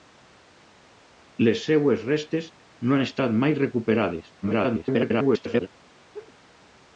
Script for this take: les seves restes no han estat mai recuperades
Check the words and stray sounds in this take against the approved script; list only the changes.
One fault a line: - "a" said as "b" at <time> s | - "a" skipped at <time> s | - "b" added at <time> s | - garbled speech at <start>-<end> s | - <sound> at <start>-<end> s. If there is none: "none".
- garbled speech at 4.4-5.7 s
- laugh at 6.1-6.3 s